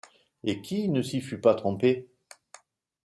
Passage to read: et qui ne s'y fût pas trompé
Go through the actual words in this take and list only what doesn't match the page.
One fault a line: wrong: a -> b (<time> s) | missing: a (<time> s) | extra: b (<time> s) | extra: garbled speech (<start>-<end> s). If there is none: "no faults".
no faults